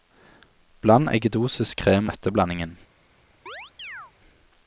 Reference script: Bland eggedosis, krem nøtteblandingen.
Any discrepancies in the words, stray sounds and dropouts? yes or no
yes